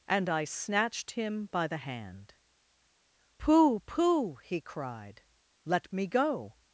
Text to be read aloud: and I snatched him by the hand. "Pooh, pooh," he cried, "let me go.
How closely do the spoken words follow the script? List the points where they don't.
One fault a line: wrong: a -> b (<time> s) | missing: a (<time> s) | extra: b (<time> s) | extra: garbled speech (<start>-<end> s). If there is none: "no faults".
no faults